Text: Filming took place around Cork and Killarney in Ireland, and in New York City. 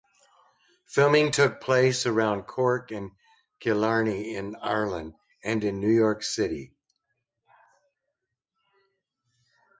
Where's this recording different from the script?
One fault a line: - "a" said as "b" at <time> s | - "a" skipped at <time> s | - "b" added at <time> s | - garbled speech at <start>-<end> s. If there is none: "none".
none